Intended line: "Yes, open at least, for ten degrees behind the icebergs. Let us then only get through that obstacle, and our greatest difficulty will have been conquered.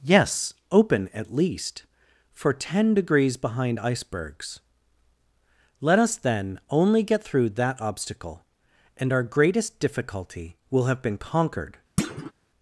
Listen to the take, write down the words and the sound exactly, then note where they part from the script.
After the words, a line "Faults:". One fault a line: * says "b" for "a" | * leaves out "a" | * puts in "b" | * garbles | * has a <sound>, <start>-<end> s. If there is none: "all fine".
"Yes, open at least, for ten degrees behind icebergs. Let us then only get through that obstacle, and our greatest difficulty will have been conquered.
Faults:
* leaves out "the"
* has a thud, 12.0-12.3 s